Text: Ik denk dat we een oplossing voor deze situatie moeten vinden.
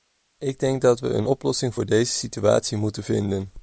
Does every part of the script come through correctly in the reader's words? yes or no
yes